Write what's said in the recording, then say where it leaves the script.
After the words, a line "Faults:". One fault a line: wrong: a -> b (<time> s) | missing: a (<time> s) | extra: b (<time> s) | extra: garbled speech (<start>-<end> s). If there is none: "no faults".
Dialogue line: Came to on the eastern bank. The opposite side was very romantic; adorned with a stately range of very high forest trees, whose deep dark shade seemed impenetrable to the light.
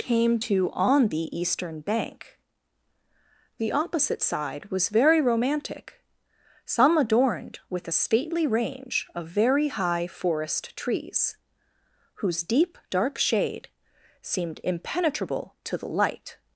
Came to on the eastern bank. The opposite side was very romantic; some adorned with a stately range of very high forest trees, whose deep dark shade seemed impenetrable to the light.
Faults:
extra: some (6.6 s)